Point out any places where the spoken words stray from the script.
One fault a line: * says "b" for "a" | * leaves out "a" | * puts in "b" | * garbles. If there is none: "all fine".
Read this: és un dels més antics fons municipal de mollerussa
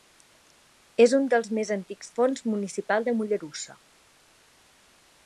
all fine